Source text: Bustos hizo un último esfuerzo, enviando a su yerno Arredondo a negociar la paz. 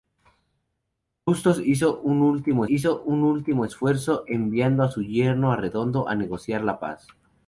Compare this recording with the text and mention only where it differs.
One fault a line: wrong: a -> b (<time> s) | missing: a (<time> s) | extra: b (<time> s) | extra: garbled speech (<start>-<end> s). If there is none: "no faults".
extra: hizo un último (2.7 s)